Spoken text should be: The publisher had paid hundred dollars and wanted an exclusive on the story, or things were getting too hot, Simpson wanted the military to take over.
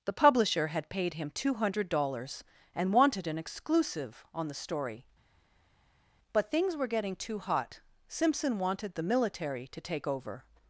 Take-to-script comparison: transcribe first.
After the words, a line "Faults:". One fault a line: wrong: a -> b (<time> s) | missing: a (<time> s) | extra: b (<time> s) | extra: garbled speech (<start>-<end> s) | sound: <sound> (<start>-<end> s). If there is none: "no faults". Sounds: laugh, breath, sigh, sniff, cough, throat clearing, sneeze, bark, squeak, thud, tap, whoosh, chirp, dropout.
The publisher had paid him two hundred dollars and wanted an exclusive on the story, but things were getting too hot, Simpson wanted the military to take over.
Faults:
extra: him two (1.1 s)
wrong: or -> but (6.3 s)